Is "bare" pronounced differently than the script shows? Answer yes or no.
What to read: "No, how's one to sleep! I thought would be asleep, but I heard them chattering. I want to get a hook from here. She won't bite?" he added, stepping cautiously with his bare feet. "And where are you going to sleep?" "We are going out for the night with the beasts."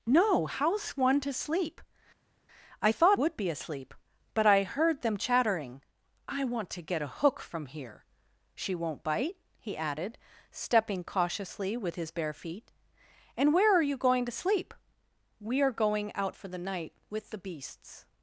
no